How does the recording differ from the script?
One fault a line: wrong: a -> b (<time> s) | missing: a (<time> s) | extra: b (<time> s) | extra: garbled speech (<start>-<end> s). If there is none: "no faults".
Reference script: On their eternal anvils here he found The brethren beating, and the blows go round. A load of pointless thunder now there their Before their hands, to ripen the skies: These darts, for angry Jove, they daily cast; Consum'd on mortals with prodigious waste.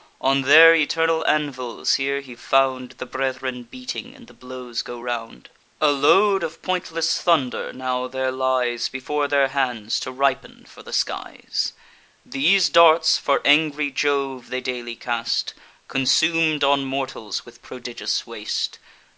wrong: their -> lies (8.3 s)
extra: for (10.7 s)